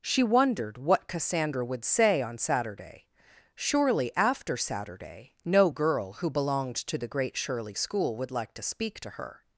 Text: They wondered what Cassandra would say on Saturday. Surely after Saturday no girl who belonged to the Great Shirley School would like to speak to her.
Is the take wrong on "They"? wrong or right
wrong